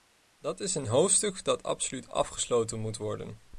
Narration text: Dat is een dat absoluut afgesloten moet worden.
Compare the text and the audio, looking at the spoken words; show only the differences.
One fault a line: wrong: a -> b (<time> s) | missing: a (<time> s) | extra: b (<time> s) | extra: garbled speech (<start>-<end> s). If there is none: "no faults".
extra: hoofdstuk (0.9 s)